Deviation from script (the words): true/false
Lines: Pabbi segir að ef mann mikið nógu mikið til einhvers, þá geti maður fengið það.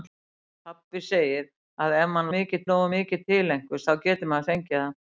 false